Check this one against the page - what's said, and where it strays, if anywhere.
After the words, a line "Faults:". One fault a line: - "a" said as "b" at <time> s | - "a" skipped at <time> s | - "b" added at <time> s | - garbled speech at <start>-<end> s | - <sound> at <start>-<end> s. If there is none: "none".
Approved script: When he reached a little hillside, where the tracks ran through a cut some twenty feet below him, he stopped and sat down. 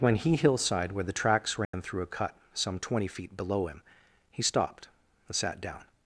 When he hillside, where the tracks ran through a cut some twenty feet below him, he stopped and sat down.
Faults:
- "reached a little" skipped at 0.3 s
- dropout at 1.6-1.7 s